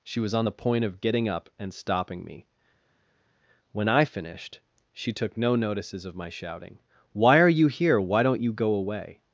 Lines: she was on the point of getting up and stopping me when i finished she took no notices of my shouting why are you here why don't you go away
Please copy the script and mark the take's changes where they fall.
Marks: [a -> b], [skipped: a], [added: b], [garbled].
she was on the point of getting up and stopping me when i finished she took no notices of my shouting why are you here why don't you go away